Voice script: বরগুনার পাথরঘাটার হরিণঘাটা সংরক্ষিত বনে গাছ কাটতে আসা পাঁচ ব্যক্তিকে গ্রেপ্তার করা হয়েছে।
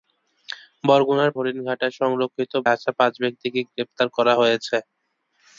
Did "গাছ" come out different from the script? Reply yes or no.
yes